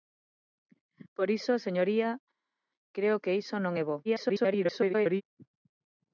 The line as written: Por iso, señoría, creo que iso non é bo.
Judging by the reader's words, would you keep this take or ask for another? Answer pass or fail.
fail